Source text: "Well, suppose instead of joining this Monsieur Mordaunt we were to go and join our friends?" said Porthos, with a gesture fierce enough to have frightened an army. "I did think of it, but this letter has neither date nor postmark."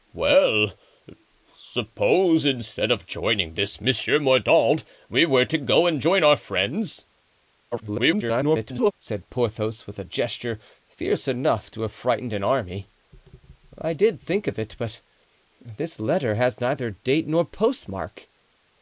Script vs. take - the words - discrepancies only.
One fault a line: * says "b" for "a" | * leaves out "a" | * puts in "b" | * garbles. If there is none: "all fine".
* garbles